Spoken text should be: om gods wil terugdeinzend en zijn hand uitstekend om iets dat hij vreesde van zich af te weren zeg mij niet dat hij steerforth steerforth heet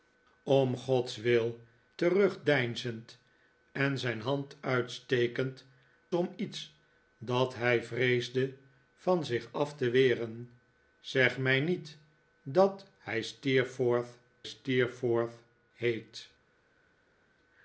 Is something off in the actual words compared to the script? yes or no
no